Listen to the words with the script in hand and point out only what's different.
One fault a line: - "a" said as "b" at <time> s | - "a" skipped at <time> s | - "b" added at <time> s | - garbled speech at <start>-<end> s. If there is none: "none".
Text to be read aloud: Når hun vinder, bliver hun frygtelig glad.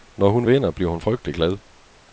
none